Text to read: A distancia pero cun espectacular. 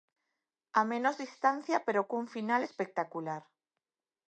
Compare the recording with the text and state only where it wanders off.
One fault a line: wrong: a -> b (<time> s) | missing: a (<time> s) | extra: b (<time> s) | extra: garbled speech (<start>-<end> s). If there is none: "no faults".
extra: menos (0.9 s)
extra: final (2.4 s)